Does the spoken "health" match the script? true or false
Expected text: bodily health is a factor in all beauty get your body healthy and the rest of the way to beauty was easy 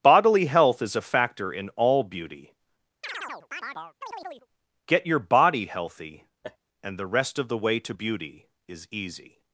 true